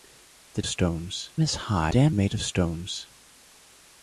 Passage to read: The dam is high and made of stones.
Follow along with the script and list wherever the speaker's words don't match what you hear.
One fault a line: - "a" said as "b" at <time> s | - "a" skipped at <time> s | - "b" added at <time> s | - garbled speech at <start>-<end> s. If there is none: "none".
- "dam" said as "stones" at 0.6 s
- "and" said as "dam" at 1.9 s